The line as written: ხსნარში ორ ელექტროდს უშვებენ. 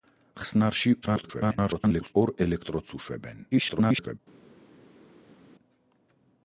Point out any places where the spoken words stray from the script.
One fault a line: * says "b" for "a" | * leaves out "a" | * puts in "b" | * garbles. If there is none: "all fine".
* garbles
* garbles